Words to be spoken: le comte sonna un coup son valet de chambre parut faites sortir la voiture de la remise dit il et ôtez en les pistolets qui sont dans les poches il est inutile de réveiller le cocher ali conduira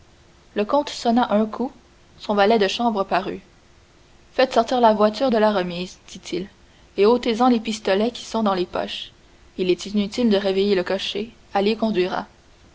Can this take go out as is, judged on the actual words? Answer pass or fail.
pass